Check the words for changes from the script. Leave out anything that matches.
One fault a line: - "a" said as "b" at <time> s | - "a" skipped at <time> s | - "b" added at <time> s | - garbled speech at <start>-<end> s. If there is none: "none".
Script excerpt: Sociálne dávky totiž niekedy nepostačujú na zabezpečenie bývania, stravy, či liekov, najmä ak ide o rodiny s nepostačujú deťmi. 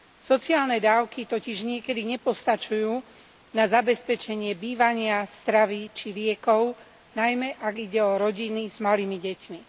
- "nepostačujú" said as "malými" at 8.8 s